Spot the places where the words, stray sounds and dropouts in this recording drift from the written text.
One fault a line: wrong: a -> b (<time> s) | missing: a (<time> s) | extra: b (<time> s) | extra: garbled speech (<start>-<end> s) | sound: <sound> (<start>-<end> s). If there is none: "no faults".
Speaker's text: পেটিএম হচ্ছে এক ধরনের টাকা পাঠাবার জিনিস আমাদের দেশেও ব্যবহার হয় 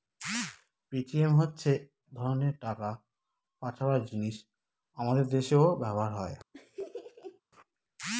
missing: এক (1.7 s)
sound: laugh (6.5-7.4 s)